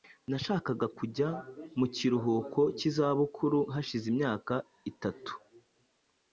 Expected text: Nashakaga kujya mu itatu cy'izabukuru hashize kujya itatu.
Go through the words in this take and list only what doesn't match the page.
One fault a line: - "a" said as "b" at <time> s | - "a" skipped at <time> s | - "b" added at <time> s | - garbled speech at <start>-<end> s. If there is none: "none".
- "itatu" said as "kiruhuko" at 1.9 s
- "kujya" said as "imyaka" at 4.1 s